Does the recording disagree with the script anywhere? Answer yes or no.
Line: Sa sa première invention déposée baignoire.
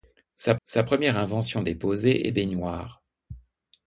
no